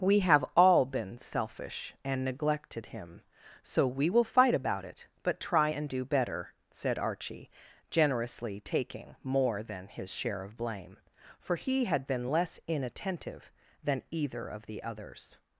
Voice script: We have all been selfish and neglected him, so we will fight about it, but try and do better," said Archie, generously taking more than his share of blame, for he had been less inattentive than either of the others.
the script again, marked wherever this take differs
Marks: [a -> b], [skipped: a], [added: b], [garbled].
We have all been selfish and neglected him, so we will fight about it, but try and do better," said Archie, generously taking more than his share of blame, for he had been less inattentive than either of the others.